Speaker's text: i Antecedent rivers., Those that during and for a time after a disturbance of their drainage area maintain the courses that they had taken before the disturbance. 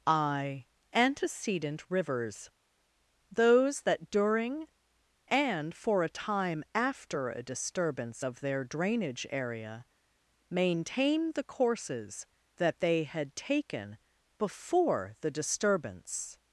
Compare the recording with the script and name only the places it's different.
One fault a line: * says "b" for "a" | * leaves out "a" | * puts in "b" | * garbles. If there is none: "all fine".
all fine